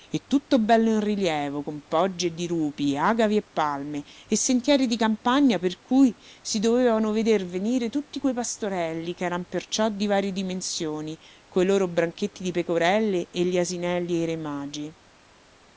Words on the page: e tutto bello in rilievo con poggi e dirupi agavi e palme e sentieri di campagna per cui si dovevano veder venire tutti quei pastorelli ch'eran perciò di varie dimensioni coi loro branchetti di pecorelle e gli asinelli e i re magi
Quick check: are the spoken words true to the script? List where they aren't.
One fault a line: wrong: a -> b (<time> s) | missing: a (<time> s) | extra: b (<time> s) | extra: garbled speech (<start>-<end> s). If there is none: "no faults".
no faults